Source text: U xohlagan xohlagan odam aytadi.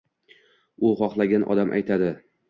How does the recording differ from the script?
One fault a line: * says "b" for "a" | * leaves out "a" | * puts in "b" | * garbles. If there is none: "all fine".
* leaves out "xohlagan"